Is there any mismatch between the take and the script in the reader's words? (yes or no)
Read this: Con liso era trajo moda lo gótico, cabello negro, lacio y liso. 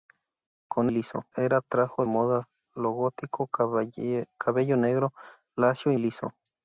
no